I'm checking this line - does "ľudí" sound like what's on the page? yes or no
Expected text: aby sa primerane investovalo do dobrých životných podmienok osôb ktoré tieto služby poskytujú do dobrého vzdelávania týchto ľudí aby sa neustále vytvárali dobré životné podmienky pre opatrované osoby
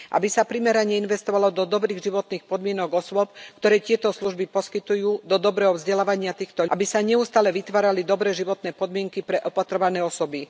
no